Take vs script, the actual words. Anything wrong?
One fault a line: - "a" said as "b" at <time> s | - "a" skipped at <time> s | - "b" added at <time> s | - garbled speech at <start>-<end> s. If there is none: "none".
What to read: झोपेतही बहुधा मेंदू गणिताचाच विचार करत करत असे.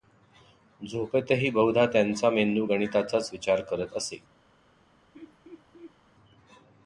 - "त्यांचा" added at 1.9 s
- "करत" skipped at 4.0 s